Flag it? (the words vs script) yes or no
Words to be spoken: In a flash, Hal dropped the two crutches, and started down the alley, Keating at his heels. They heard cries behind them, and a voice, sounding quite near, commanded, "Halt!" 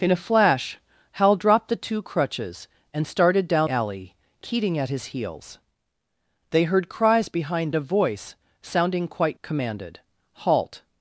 yes